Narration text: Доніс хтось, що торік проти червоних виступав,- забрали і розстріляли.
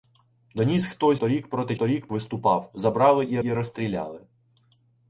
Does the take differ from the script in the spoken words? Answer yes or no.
yes